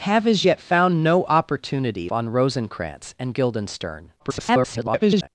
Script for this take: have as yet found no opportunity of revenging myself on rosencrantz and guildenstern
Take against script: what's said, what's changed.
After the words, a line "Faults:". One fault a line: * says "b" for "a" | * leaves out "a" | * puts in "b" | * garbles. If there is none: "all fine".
have as yet found no opportunity on rosencrantz and guildenstern [garbled]
Faults:
* leaves out "of revenging myself"
* garbles